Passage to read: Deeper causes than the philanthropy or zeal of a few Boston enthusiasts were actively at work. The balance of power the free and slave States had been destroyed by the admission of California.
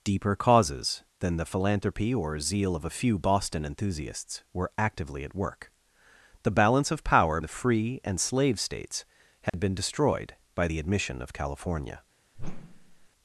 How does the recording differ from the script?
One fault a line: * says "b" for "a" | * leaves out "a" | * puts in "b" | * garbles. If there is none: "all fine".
all fine